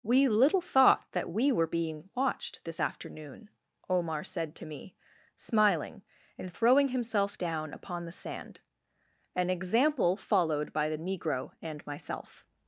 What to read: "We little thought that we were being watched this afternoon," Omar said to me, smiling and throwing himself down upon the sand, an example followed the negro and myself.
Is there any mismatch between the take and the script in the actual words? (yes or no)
yes